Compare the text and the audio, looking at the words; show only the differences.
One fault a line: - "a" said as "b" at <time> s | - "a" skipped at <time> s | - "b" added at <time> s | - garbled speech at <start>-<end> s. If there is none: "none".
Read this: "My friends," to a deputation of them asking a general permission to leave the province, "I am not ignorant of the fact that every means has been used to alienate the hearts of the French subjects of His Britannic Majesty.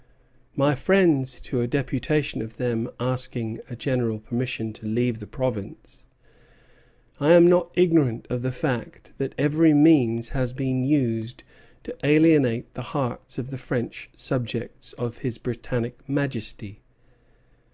none